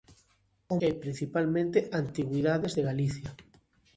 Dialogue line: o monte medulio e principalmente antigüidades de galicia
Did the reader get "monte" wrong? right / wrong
wrong